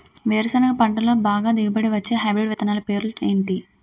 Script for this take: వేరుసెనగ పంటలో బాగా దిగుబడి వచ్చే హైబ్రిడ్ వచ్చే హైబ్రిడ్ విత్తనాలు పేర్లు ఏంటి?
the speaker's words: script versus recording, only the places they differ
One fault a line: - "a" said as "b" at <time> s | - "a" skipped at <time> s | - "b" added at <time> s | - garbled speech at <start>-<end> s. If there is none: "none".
- "వచ్చే హైబ్రిడ్" skipped at 2.5 s